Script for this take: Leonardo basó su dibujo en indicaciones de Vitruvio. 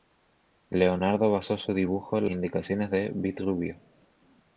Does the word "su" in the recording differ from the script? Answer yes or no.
no